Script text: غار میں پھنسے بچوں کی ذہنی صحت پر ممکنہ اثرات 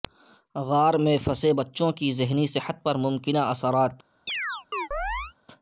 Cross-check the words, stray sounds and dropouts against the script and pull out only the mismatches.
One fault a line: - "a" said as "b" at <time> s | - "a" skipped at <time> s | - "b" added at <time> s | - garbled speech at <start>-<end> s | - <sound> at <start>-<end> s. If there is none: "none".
- chirp at 4.3-5.3 s